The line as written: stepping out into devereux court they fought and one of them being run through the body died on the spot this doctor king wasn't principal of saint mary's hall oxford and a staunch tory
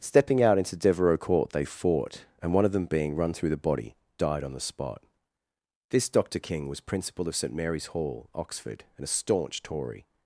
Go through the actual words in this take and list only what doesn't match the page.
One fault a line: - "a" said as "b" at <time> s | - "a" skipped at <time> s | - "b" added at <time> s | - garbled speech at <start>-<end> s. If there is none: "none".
- "wasn't" said as "was" at 6.7 s